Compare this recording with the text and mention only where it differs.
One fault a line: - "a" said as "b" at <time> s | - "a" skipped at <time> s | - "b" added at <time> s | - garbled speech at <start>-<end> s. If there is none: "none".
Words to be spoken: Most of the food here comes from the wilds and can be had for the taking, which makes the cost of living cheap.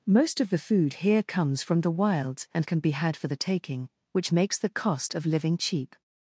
none